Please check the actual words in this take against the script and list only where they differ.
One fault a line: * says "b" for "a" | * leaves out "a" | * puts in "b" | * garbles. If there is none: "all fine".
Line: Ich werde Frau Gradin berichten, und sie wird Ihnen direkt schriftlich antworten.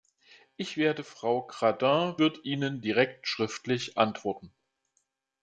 * leaves out "berichten und sie"